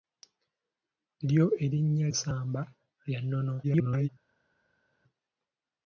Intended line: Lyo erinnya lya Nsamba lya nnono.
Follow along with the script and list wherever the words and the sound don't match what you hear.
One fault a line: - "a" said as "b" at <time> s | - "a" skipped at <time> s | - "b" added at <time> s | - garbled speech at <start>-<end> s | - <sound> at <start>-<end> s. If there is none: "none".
- "lya" skipped at 2.1 s
- garbled speech at 3.6-4.1 s